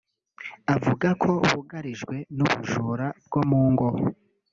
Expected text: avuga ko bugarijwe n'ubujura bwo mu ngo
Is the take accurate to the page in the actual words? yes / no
yes